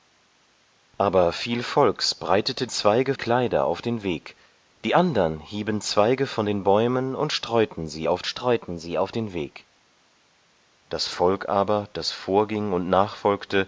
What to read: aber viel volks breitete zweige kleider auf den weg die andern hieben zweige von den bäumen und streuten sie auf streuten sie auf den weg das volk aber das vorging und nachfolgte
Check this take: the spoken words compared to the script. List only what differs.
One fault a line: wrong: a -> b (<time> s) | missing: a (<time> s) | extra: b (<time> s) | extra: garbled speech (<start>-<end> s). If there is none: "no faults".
no faults